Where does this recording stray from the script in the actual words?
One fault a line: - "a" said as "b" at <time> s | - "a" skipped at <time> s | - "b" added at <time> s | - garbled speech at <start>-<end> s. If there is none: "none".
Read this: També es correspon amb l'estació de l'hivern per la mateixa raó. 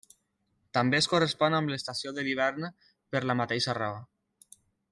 none